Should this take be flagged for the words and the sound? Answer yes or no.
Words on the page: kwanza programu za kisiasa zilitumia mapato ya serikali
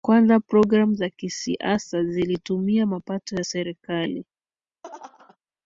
yes